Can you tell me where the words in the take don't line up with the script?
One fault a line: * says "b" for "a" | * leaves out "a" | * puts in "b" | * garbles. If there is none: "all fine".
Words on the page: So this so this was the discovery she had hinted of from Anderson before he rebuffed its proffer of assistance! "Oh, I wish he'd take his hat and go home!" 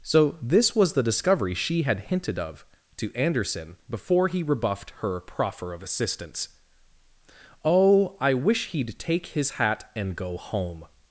* leaves out "so this"
* says "to" for "from"
* says "her" for "its"